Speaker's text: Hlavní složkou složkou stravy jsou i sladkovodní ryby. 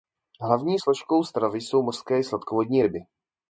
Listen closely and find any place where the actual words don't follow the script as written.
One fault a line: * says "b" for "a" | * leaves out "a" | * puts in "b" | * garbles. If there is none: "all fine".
* leaves out "složkou"
* puts in "mořské"